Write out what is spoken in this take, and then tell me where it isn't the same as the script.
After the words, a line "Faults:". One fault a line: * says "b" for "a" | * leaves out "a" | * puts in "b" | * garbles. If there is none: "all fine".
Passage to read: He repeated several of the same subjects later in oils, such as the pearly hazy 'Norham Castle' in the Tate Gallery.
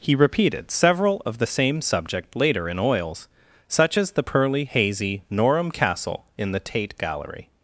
He repeated several of the same subject later in oils, such as the pearly hazy 'Norham Castle' in the Tate Gallery.
Faults:
* says "subject" for "subjects"